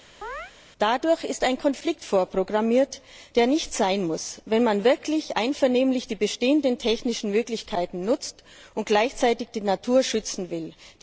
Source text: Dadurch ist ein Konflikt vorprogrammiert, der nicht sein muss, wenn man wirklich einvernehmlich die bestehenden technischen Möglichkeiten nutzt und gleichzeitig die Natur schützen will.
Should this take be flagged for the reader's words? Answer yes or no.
no